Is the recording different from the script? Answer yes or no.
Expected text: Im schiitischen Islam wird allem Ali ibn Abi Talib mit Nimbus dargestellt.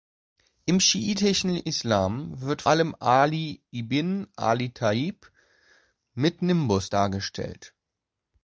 no